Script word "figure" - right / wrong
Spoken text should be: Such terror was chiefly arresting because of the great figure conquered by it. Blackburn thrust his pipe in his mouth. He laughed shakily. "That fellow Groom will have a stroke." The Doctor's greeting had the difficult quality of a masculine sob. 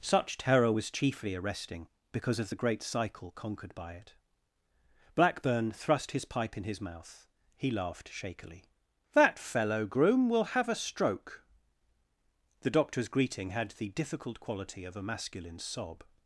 wrong